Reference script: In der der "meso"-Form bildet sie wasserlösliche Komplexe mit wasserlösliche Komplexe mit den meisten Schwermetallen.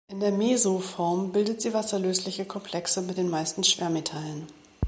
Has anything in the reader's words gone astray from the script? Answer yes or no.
yes